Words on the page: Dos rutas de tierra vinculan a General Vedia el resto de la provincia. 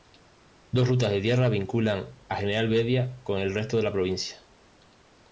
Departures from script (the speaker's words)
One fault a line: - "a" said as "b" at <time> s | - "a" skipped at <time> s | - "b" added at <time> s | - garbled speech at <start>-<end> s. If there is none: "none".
- "con" added at 3.2 s